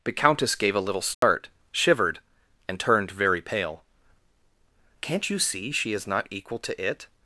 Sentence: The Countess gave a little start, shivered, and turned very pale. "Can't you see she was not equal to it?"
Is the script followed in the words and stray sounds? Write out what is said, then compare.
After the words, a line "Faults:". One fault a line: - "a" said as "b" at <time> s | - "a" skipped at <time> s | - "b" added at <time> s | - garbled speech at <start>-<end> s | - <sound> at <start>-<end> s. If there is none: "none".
The Countess gave a little start, shivered, and turned very pale. "Can't you see she is not equal to it?"
Faults:
- dropout at 1.1-1.2 s
- "was" said as "is" at 5.9 s